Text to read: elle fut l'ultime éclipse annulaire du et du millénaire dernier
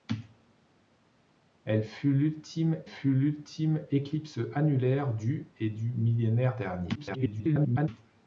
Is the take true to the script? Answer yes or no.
no